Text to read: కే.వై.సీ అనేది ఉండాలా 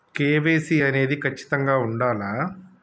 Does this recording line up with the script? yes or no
no